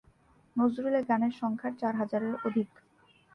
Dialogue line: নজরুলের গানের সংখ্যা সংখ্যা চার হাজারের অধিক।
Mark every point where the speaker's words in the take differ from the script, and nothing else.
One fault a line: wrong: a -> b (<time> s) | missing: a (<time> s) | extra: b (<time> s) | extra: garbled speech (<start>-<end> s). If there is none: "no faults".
missing: সংখ্যা (1.7 s)